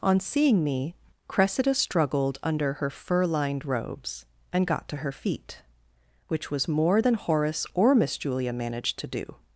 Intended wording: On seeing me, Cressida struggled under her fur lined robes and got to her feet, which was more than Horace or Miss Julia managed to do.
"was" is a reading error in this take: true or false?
false